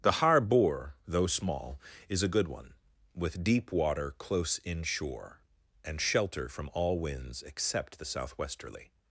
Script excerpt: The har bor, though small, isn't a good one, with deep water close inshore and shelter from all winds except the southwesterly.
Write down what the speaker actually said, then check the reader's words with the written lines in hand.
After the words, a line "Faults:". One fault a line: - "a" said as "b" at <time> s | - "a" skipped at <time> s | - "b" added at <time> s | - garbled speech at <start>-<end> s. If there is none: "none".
The har bor, though small, is a good one, with deep water close inshore and shelter from all winds except the southwesterly.
Faults:
- "isn't" said as "is" at 2.1 s